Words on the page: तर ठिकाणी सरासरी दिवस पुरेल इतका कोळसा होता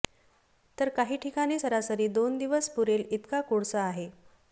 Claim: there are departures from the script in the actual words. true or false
true